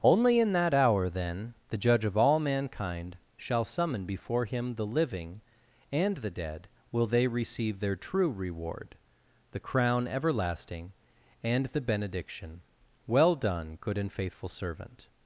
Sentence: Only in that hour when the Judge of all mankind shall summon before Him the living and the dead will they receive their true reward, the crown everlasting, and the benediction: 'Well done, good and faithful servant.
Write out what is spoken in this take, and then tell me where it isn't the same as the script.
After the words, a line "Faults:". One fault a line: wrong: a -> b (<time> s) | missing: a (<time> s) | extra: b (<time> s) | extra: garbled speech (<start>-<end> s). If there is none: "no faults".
Only in that hour then the Judge of all mankind shall summon before Him the living and the dead will they receive their true reward, the crown everlasting, and the benediction: 'Well done, good and faithful servant.
Faults:
wrong: when -> then (1.1 s)